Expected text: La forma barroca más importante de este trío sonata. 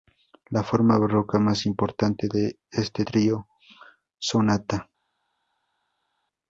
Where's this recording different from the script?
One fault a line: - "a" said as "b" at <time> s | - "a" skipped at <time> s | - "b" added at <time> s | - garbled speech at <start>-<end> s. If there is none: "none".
none